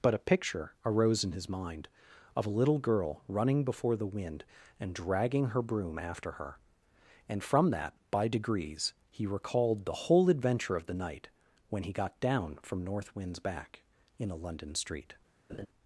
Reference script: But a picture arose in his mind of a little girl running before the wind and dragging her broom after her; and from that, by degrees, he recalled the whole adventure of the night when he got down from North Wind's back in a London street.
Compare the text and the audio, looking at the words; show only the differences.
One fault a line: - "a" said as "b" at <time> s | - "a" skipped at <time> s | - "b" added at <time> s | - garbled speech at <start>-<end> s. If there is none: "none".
none